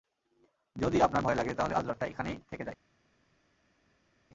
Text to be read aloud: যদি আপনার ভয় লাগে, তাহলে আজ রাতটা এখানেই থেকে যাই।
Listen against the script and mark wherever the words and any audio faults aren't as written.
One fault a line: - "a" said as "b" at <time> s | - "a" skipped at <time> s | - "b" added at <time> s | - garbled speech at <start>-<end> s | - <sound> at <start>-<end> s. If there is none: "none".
none